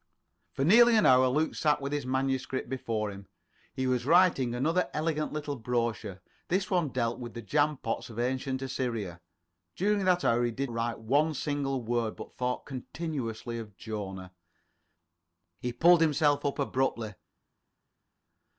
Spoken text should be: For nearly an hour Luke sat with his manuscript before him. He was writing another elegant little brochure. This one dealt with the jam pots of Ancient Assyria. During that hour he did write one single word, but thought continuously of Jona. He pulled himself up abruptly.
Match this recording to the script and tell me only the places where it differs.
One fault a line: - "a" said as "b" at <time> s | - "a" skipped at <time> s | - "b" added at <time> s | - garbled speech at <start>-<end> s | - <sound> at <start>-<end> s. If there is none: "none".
none